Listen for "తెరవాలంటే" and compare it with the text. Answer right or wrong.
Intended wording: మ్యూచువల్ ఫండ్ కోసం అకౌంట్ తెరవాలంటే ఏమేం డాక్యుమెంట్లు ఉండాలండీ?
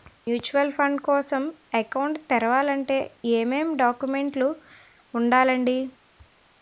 right